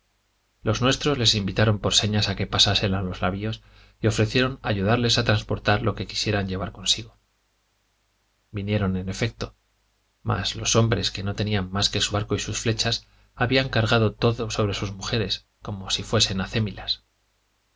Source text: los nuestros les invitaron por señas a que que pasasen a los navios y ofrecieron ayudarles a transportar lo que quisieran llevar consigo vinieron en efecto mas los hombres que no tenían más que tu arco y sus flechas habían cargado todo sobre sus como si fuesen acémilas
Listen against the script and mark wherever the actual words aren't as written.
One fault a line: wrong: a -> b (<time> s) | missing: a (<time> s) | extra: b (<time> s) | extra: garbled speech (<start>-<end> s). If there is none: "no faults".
missing: que (2.5 s)
wrong: tu -> su (12.0 s)
extra: mujeres (14.9 s)